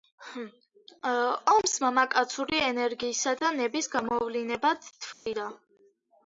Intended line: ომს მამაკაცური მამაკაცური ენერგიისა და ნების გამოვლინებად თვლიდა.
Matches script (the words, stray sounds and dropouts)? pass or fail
fail